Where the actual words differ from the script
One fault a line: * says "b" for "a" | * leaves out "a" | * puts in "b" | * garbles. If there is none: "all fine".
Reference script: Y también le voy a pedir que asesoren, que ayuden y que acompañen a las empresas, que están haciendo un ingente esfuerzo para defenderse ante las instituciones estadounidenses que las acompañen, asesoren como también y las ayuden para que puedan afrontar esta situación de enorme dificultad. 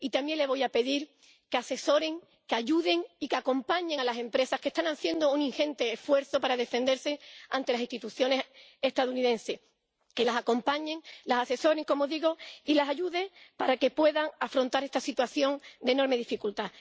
* puts in "las"
* says "digo" for "también"